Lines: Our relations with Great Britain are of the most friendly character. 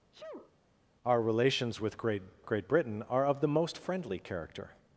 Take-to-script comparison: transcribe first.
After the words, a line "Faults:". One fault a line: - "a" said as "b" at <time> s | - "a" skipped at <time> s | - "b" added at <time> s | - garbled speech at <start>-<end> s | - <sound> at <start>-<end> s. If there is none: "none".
Our relations with Great Great Britain are of the most friendly character.
Faults:
- sneeze at 0.1-0.6 s
- "Great" added at 2.4 s